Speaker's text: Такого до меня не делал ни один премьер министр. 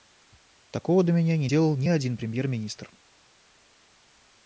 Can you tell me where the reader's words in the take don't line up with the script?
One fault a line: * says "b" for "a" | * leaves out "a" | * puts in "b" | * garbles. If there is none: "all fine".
all fine